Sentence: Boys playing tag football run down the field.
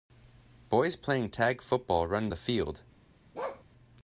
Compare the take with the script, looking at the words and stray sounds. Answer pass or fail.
fail